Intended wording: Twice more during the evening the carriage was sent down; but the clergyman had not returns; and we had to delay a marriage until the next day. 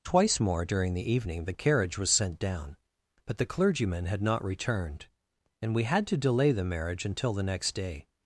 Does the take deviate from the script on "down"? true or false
false